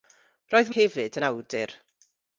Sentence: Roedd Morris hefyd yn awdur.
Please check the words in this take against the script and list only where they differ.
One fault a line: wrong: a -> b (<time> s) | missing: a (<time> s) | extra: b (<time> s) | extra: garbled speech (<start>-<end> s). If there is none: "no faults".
missing: Morris (0.7 s)